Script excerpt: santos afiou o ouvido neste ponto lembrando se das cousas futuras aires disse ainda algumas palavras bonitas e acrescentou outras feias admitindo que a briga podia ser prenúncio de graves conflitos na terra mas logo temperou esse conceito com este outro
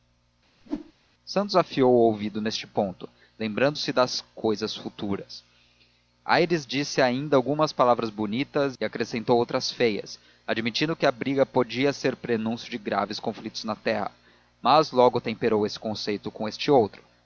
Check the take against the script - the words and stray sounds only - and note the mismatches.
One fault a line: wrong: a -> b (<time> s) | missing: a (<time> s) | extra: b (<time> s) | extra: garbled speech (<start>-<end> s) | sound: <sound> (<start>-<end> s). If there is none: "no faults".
sound: whoosh (0.6-0.9 s)